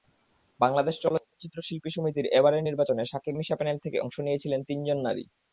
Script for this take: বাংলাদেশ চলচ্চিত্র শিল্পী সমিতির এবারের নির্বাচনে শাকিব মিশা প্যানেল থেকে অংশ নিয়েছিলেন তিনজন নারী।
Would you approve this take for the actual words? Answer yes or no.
yes